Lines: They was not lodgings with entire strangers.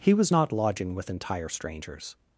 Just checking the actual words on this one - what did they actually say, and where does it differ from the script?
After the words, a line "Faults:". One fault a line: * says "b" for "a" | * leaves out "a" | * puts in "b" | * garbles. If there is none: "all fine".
He was not lodging with entire strangers.
Faults:
* says "He" for "They"
* says "lodging" for "lodgings"